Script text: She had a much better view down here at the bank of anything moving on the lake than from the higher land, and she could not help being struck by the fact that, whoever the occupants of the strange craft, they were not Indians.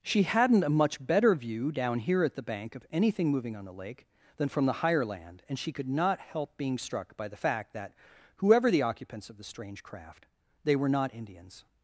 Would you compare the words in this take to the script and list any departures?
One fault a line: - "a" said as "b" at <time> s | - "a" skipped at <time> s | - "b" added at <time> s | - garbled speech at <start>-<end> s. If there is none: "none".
- "had" said as "hadn't" at 0.2 s